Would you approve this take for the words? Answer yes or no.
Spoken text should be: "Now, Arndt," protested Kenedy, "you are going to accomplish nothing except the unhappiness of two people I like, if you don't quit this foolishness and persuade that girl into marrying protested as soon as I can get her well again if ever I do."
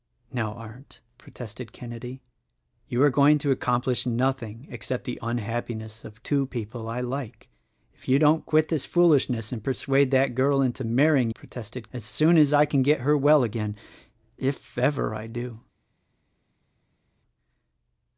yes